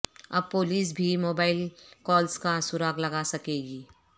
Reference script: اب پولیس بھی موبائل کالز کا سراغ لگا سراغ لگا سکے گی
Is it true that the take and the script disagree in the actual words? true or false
true